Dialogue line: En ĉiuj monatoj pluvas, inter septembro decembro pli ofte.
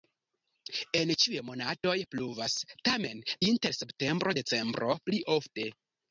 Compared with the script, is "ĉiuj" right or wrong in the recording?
right